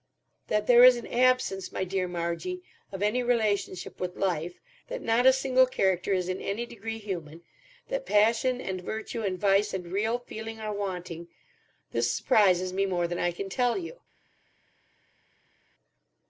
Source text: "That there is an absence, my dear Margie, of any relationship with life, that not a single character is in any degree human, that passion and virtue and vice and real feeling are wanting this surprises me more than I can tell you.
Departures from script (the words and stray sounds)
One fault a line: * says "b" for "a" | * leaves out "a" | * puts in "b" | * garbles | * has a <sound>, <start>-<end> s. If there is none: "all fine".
all fine